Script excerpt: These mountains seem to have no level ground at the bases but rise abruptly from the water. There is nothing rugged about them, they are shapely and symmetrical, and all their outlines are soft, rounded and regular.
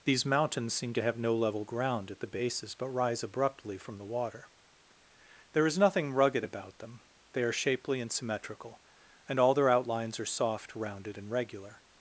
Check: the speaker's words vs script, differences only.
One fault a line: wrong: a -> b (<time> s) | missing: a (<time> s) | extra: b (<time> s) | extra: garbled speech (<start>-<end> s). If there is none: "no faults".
no faults